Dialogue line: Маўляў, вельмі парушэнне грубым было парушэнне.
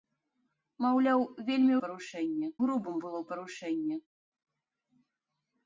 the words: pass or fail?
pass